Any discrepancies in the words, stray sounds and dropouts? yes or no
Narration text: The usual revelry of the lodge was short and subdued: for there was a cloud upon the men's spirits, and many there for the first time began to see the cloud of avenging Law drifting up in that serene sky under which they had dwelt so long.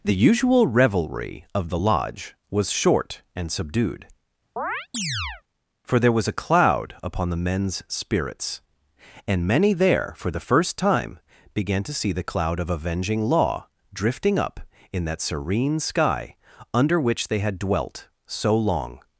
yes